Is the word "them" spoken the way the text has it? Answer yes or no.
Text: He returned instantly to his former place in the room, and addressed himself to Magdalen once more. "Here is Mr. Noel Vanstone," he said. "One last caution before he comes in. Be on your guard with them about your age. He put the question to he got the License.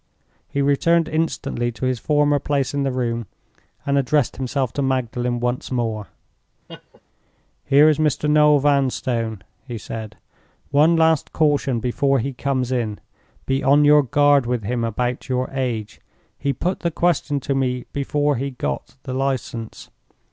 no